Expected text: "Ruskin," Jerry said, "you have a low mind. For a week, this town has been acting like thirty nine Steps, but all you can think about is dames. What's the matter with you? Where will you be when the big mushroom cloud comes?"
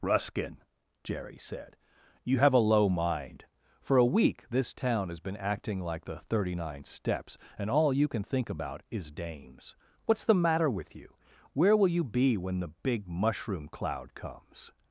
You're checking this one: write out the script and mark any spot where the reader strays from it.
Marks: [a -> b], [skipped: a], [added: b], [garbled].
"Ruskin," Jerry said, "you have a low mind. For a week, this town has been acting like [added: the] thirty nine Steps, [but -> and] all you can think about is dames. What's the matter with you? Where will you be when the big mushroom cloud comes?"